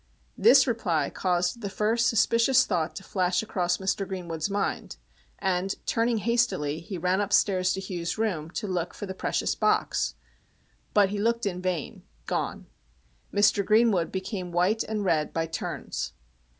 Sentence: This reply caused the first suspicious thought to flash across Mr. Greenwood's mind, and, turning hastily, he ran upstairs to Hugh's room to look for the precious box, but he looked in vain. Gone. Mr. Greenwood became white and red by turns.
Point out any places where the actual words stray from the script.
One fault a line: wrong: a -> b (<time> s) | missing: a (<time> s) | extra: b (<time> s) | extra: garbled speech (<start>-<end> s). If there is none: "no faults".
no faults